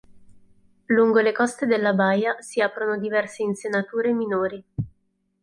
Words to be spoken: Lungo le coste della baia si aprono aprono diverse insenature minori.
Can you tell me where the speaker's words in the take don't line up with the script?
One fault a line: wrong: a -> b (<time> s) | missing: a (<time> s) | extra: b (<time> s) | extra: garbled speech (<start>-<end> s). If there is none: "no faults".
missing: aprono (3.0 s)